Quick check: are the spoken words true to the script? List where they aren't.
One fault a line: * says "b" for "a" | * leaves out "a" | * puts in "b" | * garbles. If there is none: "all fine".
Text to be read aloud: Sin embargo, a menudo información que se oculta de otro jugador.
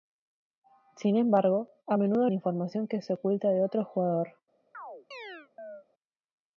all fine